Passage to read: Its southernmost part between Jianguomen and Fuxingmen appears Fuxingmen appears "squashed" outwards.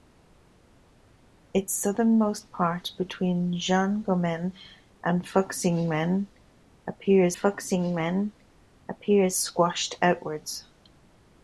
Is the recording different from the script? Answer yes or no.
no